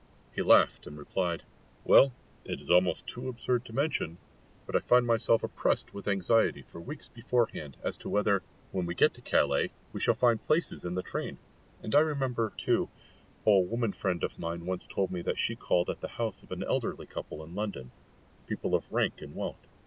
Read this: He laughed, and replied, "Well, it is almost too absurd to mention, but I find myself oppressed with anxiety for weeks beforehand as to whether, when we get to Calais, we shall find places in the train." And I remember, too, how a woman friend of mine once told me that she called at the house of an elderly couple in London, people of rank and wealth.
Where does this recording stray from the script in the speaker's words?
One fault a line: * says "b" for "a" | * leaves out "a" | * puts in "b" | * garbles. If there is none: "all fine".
all fine